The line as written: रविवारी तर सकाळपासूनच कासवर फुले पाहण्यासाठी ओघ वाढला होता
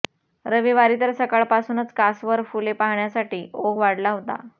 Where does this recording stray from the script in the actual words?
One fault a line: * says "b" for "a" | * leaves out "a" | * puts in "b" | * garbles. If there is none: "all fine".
all fine